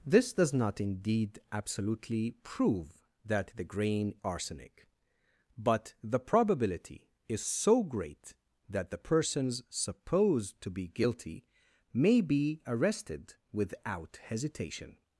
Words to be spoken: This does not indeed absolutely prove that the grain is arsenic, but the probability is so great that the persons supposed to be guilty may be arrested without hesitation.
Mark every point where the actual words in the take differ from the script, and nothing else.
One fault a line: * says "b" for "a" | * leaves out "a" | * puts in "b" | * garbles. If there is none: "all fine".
* leaves out "is"